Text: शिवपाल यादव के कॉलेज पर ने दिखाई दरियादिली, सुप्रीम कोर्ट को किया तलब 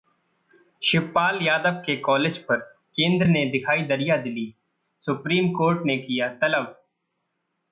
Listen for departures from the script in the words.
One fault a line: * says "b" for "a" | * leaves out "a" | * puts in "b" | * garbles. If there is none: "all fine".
* puts in "केंद्र"
* says "ने" for "को"